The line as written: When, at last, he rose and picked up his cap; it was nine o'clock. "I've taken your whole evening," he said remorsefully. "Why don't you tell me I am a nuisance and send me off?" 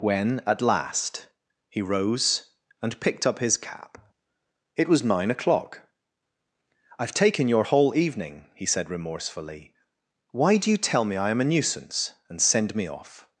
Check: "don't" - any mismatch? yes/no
yes